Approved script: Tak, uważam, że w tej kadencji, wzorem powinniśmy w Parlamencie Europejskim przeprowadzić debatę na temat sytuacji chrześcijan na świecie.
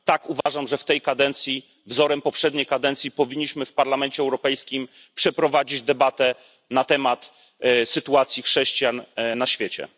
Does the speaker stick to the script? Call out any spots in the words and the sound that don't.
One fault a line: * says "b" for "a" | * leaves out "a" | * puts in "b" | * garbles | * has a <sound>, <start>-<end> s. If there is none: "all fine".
* has a dropout, 0.4-0.5 s
* puts in "poprzedniej kadencji"